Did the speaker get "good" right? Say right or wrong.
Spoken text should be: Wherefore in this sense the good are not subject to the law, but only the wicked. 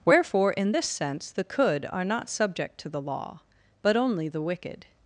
wrong